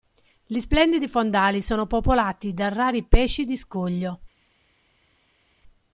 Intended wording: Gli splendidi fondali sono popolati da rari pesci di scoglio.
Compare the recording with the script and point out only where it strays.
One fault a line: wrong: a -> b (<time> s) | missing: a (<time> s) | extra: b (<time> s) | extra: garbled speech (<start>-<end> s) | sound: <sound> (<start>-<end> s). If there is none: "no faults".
no faults